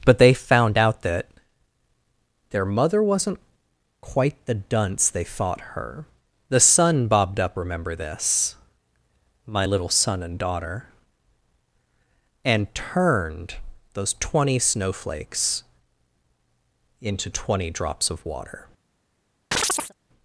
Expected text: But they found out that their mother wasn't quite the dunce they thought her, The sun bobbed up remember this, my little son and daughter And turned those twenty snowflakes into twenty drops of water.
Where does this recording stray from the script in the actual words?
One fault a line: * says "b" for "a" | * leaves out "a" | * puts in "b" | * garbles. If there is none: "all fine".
all fine